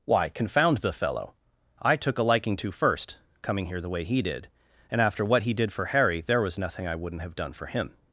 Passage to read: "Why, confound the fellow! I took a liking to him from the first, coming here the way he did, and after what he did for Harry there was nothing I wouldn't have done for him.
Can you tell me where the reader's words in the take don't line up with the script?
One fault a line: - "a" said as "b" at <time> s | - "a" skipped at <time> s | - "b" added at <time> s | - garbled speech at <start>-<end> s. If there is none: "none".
- "him from the" skipped at 2.7 s